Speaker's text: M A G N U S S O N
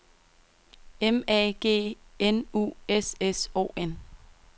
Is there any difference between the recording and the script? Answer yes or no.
no